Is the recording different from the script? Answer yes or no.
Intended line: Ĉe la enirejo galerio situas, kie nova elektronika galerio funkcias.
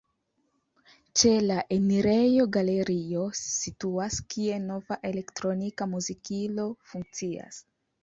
yes